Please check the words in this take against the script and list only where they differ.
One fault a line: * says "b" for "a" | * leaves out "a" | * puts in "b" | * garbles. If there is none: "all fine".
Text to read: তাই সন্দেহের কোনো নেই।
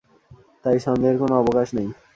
* puts in "অবকাশ"